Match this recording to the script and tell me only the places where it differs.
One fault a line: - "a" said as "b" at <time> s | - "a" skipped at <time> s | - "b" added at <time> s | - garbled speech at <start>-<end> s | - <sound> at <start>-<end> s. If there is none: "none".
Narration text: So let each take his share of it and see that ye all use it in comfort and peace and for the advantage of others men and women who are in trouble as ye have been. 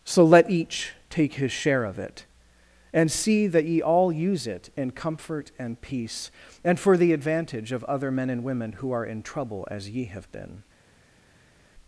- "others" said as "other" at 7.8 s